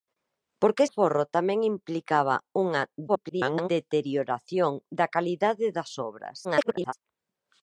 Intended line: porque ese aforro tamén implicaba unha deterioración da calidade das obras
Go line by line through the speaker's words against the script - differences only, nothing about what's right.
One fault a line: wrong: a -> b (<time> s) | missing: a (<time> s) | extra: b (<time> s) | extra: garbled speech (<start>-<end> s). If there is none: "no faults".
missing: ese (0.8 s)
extra: garbled speech (3.1-3.7 s)
extra: garbled speech (6.4-6.9 s)